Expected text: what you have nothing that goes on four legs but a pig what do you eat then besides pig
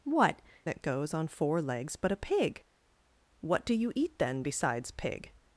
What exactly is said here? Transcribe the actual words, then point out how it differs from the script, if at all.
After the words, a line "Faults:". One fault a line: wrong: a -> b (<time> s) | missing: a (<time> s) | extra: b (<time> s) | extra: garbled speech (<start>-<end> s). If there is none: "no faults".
what that goes on four legs but a pig what do you eat then besides pig
Faults:
missing: you have nothing (0.4 s)